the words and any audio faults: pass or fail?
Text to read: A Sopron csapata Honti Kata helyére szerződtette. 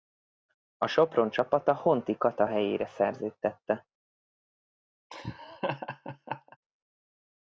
fail